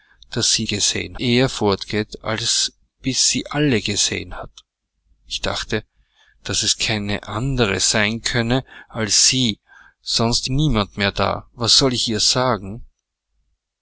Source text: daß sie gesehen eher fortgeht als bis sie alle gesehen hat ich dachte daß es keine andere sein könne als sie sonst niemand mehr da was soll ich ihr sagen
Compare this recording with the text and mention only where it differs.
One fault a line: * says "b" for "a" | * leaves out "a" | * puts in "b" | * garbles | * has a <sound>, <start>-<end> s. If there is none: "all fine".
all fine